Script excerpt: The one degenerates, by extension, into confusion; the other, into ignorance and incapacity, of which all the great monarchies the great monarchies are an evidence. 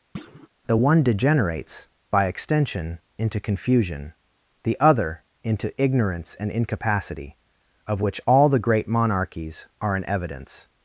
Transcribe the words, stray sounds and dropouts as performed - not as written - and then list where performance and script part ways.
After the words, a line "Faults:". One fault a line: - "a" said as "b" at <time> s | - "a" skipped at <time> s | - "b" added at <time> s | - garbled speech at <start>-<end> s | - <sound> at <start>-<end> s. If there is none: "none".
The one degenerates, by extension, into confusion; the other, into ignorance and incapacity, of which all the great monarchies are an evidence.
Faults:
- thud at 0.1-0.5 s
- "the great monarchies" skipped at 9.7 s